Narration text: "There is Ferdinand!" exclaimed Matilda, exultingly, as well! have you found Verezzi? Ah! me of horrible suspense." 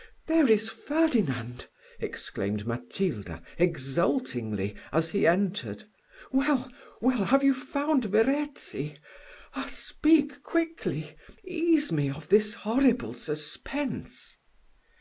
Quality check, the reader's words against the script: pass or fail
fail